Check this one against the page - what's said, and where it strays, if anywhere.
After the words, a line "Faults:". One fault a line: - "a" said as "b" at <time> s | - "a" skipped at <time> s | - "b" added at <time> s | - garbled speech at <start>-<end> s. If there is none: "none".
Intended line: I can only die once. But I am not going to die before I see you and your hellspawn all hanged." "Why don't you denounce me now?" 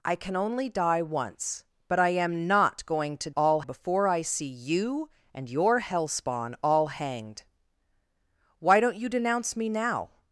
I can only die once. But I am not going to all before I see you and your hellspawn all hanged." "Why don't you denounce me now?"
Faults:
- "die" said as "all" at 3.4 s